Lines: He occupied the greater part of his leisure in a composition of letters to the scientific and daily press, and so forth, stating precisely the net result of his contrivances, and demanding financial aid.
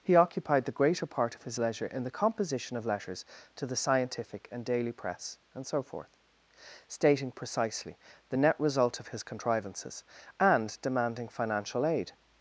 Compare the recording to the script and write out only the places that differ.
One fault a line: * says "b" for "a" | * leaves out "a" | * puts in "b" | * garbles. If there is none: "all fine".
* says "the" for "a"